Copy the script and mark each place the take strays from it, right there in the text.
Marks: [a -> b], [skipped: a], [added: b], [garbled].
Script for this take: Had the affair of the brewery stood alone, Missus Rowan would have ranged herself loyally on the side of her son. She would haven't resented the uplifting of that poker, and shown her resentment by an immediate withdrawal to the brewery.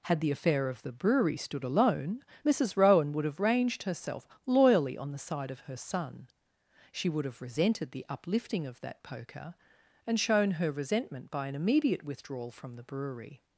Had the affair of the brewery stood alone, Missus Rowan would have ranged herself loyally on the side of her son. She would [haven't -> have] resented the uplifting of that poker, and shown her resentment by an immediate withdrawal [to -> from] the brewery.